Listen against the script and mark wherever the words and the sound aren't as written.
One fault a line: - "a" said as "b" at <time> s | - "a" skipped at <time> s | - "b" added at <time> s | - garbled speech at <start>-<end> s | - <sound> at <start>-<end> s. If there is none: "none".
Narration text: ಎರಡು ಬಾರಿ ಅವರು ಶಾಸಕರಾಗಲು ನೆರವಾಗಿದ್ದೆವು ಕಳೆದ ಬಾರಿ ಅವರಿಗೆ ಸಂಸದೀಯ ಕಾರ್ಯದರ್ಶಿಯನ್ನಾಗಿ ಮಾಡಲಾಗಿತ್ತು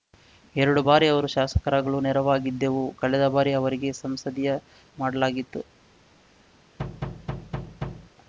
- "ಕಾರ್ಯದರ್ಶಿಯನ್ನಾಗಿ" skipped at 4.5 s
- thud at 6.8-8.1 s